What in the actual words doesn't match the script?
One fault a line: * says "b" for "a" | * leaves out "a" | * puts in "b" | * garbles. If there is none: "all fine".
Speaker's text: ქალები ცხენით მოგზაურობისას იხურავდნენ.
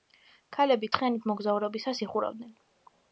all fine